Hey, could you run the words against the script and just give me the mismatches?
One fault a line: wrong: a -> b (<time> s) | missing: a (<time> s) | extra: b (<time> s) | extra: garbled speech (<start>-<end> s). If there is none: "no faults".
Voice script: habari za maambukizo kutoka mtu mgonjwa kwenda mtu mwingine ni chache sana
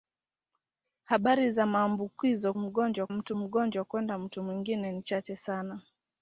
wrong: kutoka -> mgonjwa (2.6 s)